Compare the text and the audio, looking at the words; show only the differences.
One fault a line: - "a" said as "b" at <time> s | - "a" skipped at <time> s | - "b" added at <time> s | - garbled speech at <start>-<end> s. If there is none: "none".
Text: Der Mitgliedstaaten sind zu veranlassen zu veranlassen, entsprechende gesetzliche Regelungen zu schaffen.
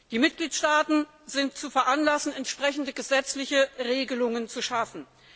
- "Der" said as "Die" at 0.1 s
- "zu veranlassen" skipped at 2.3 s